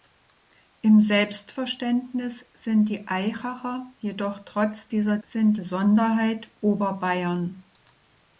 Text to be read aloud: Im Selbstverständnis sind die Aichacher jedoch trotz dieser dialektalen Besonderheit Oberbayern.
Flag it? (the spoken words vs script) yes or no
yes